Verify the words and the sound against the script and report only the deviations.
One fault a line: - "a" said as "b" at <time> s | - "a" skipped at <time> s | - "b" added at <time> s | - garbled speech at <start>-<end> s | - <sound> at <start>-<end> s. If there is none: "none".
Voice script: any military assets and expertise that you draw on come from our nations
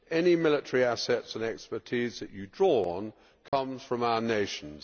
- dropout at 3.5-3.5 s